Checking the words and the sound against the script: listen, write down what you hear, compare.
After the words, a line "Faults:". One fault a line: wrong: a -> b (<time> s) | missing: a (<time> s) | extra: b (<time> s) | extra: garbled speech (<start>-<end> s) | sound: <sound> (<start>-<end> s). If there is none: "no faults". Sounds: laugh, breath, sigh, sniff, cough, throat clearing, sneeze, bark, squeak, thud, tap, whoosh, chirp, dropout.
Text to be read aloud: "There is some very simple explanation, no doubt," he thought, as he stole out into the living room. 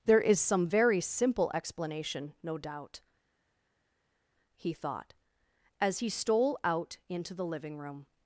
"There is some very simple explanation, no doubt," he thought, as he stole out into the living room.
Faults:
no faults